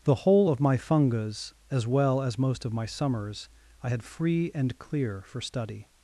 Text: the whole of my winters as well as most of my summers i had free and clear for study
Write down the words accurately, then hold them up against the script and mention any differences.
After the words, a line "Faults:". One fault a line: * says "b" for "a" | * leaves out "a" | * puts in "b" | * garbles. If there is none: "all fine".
the whole of my fungas as well as most of my summers i had free and clear for study
Faults:
* says "fungas" for "winters"